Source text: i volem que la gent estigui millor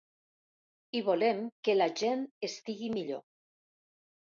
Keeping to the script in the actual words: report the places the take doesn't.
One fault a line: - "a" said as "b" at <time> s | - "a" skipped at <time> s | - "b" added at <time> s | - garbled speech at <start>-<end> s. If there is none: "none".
none